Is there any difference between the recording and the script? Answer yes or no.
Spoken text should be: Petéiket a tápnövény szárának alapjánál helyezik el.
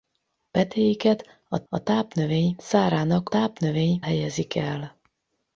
yes